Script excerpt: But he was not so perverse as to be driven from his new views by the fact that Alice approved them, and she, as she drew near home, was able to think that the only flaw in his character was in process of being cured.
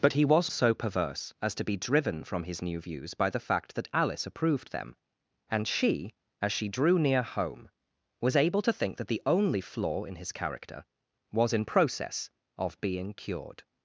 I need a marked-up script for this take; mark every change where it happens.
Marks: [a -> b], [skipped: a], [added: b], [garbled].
But he was [skipped: not] so perverse as to be driven from his new views by the fact that Alice approved them, and she, as she drew near home, was able to think that the only flaw in his character was in process of being cured.